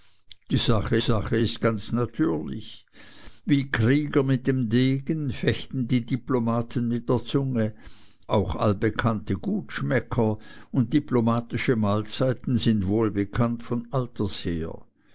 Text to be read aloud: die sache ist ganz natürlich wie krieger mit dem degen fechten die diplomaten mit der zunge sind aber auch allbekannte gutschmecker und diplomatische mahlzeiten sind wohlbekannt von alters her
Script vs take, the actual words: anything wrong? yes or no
yes